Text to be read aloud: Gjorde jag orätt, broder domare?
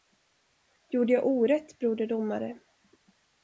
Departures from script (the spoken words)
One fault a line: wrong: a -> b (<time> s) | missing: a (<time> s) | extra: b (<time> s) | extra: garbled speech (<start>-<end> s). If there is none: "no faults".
no faults